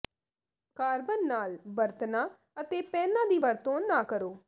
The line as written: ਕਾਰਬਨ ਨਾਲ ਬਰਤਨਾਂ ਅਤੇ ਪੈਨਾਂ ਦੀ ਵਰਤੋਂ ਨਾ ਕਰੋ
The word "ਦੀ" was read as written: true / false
true